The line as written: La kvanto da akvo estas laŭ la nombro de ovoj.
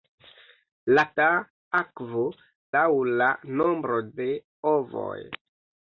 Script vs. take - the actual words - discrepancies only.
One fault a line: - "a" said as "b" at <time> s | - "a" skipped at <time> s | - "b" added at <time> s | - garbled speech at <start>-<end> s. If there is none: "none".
- "kvanto" skipped at 1.0 s
- "estas" skipped at 2.2 s